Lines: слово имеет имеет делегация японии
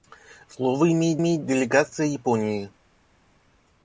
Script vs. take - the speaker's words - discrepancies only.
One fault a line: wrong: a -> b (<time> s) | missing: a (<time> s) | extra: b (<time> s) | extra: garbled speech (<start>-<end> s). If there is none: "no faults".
no faults